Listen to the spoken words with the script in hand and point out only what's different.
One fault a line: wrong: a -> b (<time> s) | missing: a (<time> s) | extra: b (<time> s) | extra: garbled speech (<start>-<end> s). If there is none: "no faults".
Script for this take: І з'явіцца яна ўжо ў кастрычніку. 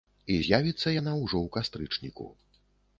no faults